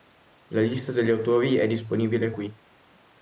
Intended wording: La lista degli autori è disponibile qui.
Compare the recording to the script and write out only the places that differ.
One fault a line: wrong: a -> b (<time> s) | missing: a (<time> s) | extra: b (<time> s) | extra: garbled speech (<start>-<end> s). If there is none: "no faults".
no faults